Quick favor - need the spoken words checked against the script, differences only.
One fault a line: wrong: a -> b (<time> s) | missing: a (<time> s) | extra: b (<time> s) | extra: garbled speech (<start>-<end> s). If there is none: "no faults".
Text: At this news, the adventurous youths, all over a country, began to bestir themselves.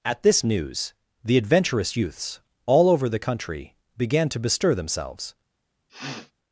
wrong: a -> the (3.1 s)